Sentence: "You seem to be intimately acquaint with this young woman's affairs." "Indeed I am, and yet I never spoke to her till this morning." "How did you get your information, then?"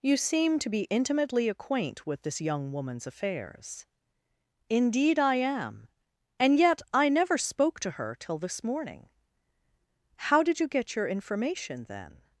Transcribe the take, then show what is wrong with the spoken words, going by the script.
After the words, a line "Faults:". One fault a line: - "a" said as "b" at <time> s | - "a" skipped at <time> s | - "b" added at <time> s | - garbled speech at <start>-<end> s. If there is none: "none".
"You seem to be intimately acquaint with this young woman's affairs." "Indeed I am, and yet I never spoke to her till this morning." "How did you get your information, then?"
Faults:
none